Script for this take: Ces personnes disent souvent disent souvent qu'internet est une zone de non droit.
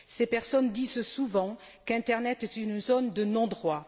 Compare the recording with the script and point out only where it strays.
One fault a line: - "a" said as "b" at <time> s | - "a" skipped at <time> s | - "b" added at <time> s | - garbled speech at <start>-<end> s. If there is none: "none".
- "disent souvent" skipped at 1.6 s